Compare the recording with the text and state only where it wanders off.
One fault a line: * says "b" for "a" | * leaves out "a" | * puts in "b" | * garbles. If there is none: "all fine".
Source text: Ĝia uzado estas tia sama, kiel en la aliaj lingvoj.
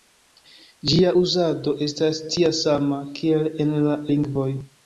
* leaves out "aliaj"